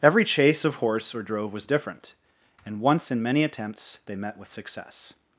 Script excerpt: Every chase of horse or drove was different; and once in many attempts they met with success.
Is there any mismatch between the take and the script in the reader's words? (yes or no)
no